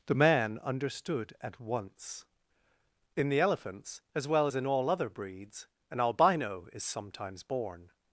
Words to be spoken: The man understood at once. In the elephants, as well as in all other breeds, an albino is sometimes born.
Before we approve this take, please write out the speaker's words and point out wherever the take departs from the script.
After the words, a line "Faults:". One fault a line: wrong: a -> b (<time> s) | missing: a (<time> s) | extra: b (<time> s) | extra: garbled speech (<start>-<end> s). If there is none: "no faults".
The man understood at once. In the elephants, as well as in all other breeds, an albino is sometimes born.
Faults:
no faults